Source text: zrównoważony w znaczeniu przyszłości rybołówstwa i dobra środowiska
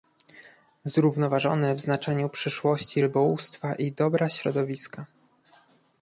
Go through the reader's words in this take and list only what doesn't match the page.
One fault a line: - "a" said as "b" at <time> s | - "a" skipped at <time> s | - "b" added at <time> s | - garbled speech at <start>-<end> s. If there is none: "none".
none